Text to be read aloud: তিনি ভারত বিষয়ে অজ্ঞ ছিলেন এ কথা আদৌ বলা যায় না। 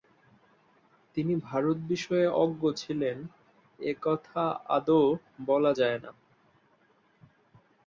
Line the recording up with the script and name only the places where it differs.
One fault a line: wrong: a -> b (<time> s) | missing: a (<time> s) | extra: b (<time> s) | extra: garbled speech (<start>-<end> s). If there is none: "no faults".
no faults